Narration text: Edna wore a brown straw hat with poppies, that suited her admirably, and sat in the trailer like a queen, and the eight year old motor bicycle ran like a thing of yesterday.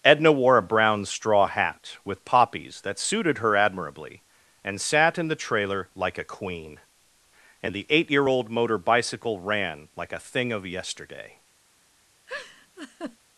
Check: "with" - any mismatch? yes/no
no